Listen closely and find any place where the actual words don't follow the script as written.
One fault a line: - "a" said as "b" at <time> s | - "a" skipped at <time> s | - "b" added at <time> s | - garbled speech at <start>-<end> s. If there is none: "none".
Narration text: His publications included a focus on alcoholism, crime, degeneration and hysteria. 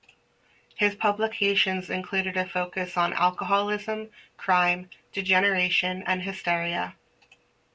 none